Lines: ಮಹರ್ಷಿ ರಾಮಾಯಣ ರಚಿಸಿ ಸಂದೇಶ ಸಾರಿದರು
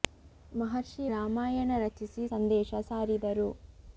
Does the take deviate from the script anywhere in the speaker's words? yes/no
no